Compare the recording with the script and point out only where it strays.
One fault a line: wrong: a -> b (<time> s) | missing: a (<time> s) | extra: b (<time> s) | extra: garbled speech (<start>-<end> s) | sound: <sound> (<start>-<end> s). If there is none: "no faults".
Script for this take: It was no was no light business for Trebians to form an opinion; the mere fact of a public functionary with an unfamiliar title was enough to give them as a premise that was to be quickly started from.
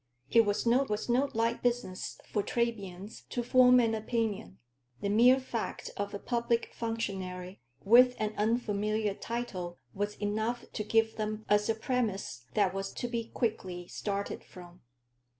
no faults